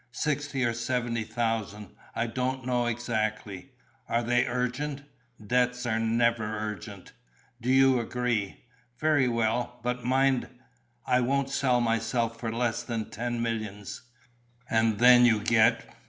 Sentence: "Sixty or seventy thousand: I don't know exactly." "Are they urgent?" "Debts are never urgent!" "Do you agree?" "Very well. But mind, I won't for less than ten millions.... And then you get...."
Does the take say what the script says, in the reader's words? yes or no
no